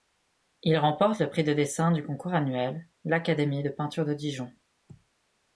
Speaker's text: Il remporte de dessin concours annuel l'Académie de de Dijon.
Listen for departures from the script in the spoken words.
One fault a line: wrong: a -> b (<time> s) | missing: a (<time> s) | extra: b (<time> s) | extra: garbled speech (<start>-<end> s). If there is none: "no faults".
extra: le prix (1.2 s)
extra: du (1.9 s)
extra: peinture (3.7 s)